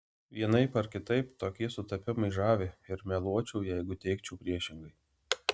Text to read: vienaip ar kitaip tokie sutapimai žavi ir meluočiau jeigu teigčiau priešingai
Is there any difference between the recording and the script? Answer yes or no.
no